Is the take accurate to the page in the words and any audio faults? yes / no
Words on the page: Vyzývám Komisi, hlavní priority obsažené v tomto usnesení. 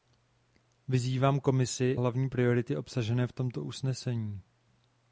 yes